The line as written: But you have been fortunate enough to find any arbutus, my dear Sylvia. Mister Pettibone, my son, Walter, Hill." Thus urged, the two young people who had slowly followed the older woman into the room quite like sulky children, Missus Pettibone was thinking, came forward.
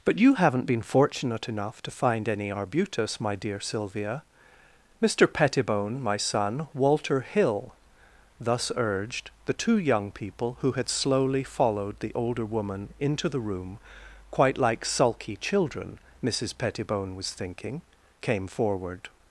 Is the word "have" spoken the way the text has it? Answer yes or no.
no